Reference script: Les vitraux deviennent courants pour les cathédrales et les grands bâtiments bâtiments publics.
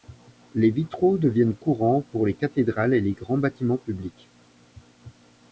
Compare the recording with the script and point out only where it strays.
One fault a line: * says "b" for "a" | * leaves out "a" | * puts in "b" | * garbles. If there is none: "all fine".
* leaves out "bâtiments"